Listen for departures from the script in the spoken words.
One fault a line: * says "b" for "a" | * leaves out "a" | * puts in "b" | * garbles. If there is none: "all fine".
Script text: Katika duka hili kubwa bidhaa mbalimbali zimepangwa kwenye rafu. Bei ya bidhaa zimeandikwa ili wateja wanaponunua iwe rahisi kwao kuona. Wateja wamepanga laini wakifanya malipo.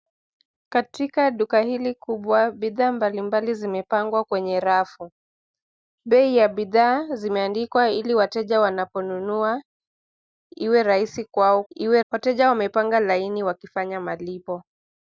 * says "iwe" for "kuona"